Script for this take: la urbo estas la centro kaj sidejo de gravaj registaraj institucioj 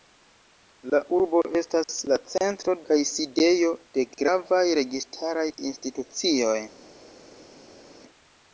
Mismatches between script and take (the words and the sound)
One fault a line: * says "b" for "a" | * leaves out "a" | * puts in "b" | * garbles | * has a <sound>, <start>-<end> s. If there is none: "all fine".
all fine